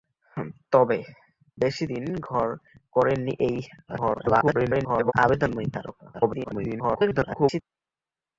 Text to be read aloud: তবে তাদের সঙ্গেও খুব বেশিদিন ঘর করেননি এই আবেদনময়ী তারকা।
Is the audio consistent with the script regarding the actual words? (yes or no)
no